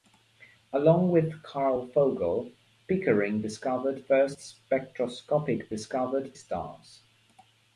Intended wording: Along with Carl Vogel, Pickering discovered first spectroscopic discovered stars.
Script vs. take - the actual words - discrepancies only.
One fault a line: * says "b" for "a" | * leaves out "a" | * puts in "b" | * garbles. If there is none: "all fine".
all fine